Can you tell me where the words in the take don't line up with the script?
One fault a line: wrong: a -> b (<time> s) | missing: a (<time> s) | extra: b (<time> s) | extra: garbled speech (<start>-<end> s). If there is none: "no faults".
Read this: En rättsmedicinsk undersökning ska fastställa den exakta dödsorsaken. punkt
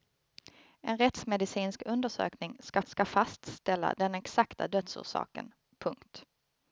extra: ska (2.8 s)